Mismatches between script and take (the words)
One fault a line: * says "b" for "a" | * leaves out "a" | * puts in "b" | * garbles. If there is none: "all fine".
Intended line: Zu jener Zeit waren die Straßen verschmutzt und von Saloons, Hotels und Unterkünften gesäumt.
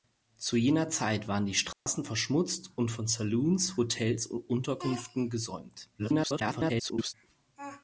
* garbles